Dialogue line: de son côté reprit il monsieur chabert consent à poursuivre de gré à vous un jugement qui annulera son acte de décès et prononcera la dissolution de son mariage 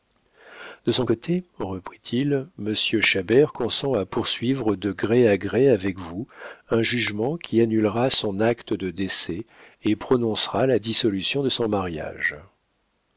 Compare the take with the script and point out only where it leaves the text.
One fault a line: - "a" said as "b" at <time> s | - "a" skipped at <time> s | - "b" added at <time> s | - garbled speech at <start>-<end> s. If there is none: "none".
- "gré avec" added at 5.4 s